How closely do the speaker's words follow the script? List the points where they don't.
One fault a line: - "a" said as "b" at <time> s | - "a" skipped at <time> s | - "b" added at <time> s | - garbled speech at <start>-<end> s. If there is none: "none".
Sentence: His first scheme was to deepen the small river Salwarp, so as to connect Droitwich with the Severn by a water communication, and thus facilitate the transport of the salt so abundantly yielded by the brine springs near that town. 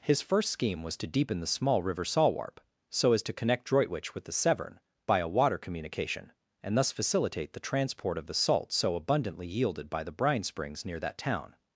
none